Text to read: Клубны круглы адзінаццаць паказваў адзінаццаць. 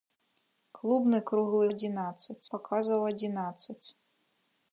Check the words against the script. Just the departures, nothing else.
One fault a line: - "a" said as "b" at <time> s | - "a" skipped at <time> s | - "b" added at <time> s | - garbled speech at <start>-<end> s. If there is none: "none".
none